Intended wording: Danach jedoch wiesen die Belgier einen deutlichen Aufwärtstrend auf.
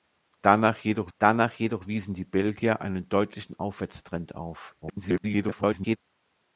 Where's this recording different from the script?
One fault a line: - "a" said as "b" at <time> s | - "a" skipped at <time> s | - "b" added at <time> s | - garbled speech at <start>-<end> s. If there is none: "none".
- "danach jedoch" added at 1.2 s
- garbled speech at 4.8-6.0 s